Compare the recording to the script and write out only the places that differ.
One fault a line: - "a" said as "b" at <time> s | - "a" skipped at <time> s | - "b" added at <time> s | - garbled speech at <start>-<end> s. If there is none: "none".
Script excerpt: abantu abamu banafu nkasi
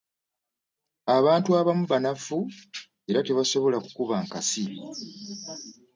- "era tebasobola kukuba" added at 3.1 s